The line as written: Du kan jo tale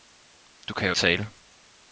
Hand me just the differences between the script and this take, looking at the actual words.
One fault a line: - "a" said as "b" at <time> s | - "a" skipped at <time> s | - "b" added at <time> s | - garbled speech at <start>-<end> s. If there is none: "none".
none